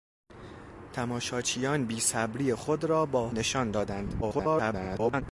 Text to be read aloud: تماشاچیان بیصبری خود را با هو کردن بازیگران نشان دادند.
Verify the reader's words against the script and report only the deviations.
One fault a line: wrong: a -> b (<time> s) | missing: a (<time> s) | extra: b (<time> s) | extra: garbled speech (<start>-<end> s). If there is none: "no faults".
missing: هو کردن بازیگران (3.3 s)
extra: garbled speech (4.2-5.2 s)